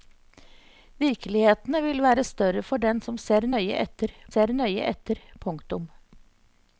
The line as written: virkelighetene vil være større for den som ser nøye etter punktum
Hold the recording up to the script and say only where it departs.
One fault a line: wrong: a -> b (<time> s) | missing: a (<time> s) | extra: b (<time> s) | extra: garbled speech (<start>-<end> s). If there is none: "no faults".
extra: ser nøye etter (4.3 s)